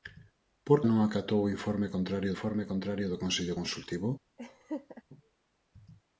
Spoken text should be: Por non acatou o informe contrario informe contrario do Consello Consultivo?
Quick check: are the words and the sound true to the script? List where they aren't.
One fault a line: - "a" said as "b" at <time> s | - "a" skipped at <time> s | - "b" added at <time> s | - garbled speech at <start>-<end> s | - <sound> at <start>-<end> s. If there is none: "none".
- laugh at 4.4-5.0 s